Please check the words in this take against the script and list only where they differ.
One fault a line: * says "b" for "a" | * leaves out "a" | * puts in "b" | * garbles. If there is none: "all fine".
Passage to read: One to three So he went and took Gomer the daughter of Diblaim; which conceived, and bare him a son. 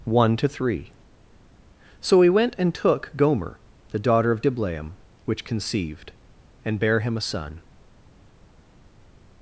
all fine